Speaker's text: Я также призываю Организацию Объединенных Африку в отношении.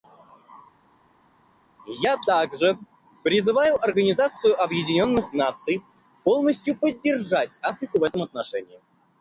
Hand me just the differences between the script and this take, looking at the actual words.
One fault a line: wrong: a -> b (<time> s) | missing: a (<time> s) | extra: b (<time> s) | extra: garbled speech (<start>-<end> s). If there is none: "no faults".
extra: Наций полностью поддержать (5.3 s)
extra: этом (8.0 s)